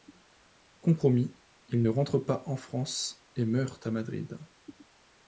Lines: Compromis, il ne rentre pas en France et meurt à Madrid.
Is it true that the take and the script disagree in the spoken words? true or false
false